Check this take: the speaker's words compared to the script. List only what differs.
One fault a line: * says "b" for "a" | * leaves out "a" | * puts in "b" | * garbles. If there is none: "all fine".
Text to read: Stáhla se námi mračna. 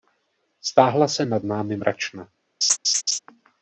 * puts in "nad"